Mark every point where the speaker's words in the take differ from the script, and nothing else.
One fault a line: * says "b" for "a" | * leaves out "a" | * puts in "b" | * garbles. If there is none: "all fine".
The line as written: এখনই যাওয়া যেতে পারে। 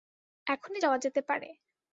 all fine